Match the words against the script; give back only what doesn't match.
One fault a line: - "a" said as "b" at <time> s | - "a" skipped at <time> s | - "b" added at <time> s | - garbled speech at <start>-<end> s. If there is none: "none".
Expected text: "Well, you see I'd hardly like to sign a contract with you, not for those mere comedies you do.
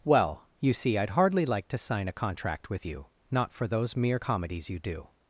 none